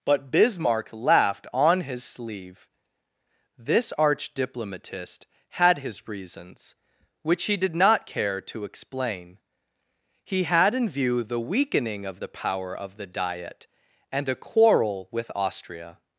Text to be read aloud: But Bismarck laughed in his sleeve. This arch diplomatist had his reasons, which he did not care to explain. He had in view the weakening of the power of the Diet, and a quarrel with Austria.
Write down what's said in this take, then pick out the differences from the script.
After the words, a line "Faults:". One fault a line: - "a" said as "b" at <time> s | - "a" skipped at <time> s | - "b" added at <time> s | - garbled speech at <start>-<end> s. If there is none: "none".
But Bismarck laughed on his sleeve. This arch diplomatist had his reasons, which he did not care to explain. He had in view the weakening of the power of the Diet, and a quarrel with Austria.
Faults:
- "in" said as "on" at 1.5 s